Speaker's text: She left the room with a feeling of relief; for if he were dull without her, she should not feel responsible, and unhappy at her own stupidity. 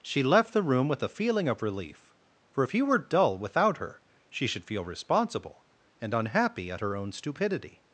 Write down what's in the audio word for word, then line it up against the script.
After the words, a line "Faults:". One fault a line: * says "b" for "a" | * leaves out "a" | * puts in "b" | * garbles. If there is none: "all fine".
She left the room with a feeling of relief; for if he were dull without her, she should feel responsible, and unhappy at her own stupidity.
Faults:
* leaves out "not"